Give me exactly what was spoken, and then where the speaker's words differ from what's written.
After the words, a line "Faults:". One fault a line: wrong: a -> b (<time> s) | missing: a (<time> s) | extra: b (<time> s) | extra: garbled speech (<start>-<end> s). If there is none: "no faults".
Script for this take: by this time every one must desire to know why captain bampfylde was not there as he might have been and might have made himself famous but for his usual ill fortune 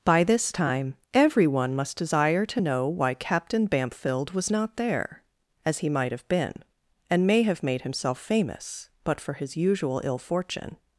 by this time every one must desire to know why captain bampfylde was not there as he might have been and may have made himself famous but for his usual ill fortune
Faults:
wrong: might -> may (7.3 s)